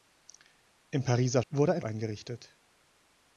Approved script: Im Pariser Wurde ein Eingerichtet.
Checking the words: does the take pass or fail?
pass